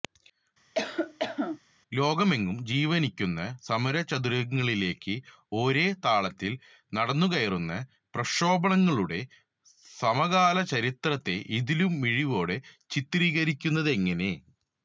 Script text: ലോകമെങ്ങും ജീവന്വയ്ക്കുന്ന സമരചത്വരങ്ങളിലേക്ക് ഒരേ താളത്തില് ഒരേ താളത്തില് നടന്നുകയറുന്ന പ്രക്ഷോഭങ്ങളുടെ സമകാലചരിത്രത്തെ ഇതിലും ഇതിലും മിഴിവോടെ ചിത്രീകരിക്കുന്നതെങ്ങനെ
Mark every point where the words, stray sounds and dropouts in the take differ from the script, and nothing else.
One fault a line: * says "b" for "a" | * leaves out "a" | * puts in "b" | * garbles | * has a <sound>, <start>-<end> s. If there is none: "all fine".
* has a cough, 0.7-1.6 s
* leaves out "ഒരേ താളത്തില്"
* leaves out "ഇതിലും"